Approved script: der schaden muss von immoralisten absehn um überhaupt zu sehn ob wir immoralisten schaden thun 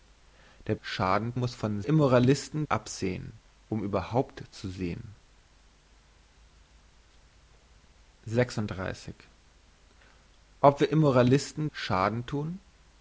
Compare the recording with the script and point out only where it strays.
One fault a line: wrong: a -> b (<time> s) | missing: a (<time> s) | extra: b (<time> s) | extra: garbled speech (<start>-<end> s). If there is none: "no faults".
no faults